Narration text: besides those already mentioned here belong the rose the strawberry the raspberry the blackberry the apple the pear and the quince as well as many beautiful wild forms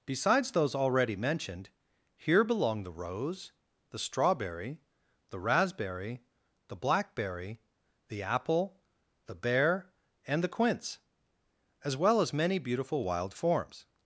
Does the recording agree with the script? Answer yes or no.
no